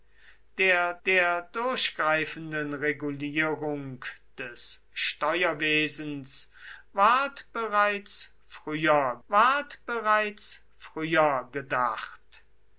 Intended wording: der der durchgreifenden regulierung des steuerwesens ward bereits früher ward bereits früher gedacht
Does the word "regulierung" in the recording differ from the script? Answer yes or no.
no